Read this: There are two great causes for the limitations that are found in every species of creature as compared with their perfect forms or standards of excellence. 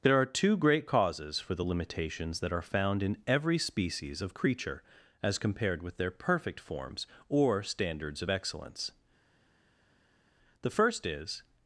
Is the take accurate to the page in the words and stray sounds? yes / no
no